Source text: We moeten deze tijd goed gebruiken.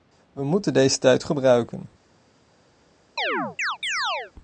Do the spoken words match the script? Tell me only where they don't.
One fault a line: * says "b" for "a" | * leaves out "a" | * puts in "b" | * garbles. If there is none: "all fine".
* leaves out "goed"